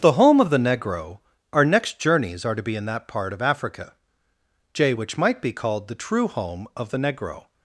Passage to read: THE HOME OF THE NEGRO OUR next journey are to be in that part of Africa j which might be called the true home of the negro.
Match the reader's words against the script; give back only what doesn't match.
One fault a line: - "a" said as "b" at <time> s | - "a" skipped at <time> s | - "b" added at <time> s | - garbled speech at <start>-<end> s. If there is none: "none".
- "journey" said as "journeys" at 2.0 s